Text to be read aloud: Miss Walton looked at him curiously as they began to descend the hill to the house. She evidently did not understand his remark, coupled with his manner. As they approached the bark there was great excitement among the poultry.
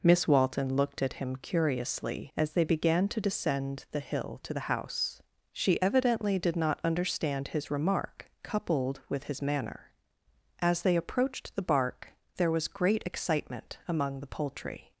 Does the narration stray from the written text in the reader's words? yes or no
no